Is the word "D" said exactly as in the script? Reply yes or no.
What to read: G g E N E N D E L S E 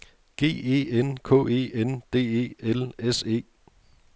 yes